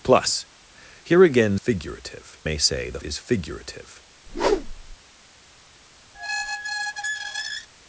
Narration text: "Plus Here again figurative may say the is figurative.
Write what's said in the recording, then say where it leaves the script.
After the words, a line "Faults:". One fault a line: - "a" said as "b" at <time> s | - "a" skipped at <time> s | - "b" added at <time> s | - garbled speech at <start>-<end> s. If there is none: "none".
"Plus Here again figurative may say the is figurative.
Faults:
none